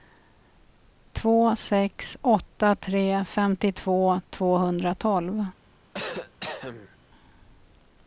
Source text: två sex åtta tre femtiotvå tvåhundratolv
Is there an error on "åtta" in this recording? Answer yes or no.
no